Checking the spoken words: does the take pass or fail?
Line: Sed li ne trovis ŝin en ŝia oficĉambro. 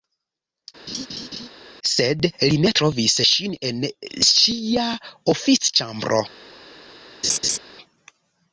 pass